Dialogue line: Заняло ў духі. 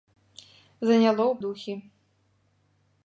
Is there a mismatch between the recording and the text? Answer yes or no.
no